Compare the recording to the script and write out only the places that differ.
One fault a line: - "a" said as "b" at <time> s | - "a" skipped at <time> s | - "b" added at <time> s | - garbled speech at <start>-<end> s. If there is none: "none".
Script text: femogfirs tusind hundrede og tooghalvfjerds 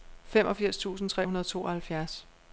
- "tre" added at 1.1 s